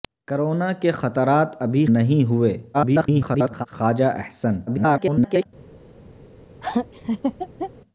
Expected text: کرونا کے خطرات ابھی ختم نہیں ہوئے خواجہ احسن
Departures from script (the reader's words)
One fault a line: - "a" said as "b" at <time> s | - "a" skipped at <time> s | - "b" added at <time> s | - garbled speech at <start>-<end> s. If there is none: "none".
- "ختم" skipped at 1.9 s
- garbled speech at 2.7-3.7 s
- garbled speech at 4.7-5.5 s